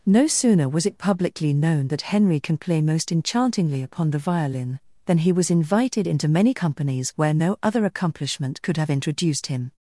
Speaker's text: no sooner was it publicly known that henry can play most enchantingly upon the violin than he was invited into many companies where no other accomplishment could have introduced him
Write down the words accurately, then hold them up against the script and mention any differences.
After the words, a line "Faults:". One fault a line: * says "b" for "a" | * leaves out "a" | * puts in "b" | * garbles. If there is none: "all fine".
no sooner was it publicly known that henry can play most enchantingly upon the violin than he was invited into many companies where no other accomplishment could have introduced him
Faults:
all fine